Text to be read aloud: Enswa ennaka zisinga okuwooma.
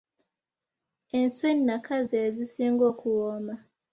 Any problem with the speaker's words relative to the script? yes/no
yes